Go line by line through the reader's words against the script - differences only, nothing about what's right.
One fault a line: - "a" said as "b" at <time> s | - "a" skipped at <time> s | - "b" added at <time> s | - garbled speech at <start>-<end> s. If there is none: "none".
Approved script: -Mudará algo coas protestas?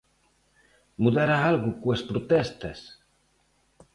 none